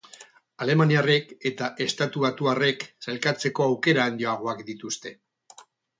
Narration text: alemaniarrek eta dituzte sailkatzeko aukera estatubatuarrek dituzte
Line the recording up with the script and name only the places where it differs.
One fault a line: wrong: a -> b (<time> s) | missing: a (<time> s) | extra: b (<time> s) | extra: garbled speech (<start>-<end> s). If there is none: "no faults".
wrong: dituzte -> estatubatuarrek (1.9 s)
wrong: estatubatuarrek -> handiagoak (4.1 s)